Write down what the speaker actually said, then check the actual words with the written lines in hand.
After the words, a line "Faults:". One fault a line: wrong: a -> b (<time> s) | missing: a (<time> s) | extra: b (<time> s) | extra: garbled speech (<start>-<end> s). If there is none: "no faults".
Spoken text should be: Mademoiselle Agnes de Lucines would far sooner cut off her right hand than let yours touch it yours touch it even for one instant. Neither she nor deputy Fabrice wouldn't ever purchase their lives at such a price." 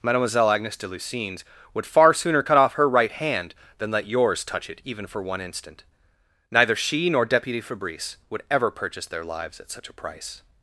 Mademoiselle Agnes de Lucines would far sooner cut off her right hand than let yours touch it even for one instant. Neither she nor deputy Fabrice would ever purchase their lives at such a price."
Faults:
missing: yours touch it (4.8 s)
wrong: wouldn't -> would (8.3 s)